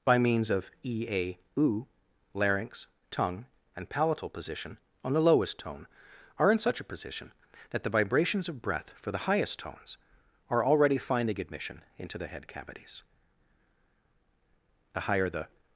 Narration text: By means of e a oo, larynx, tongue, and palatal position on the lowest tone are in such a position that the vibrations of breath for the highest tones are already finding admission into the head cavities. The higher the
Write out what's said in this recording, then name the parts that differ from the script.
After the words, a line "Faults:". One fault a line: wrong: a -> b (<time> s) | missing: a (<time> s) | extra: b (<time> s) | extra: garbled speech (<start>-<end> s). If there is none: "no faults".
By means of e a oo, larynx, tongue, and palatal position on the lowest tone are in such a position that the vibrations of breath for the highest tones are already finding admission into the head cavities. The higher the
Faults:
no faults